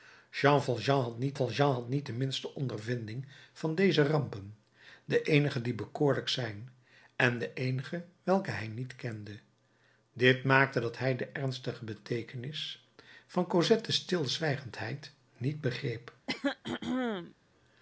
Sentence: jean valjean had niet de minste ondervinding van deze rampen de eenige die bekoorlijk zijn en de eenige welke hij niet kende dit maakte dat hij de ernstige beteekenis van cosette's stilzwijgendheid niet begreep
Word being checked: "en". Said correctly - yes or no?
yes